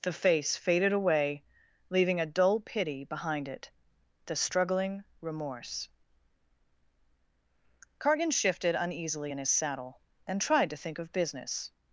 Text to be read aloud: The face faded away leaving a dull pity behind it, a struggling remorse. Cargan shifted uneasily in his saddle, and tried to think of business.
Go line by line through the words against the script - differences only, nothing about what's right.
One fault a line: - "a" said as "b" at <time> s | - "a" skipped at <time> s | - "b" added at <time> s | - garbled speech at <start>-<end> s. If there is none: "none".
- "a" said as "the" at 4.2 s